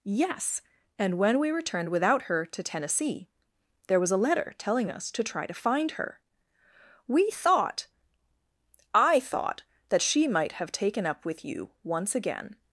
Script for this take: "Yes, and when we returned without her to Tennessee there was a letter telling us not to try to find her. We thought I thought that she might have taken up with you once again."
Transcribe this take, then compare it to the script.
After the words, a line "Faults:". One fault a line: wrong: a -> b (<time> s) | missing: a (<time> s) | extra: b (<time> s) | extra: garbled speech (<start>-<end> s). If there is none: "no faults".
"Yes, and when we returned without her to Tennessee there was a letter telling us to try to find her. We thought I thought that she might have taken up with you once again."
Faults:
missing: not (5.1 s)